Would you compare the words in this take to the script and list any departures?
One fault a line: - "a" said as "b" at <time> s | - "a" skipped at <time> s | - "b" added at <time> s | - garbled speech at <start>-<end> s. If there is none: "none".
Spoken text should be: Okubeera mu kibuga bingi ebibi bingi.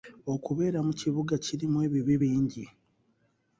- "bingi" said as "kirimu" at 1.4 s